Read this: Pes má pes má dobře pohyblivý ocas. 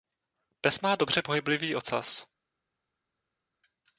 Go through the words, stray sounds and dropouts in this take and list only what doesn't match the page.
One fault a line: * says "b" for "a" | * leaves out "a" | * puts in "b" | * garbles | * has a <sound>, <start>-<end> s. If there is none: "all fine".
* leaves out "pes má"